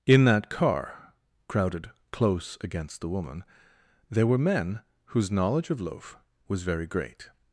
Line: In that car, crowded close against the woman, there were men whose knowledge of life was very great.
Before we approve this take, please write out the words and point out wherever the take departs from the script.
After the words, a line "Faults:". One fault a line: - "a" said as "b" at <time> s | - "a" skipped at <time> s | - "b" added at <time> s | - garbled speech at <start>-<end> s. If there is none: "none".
In that car, crowded close against the woman, there were men whose knowledge of loaf was very great.
Faults:
- "life" said as "loaf" at 5.8 s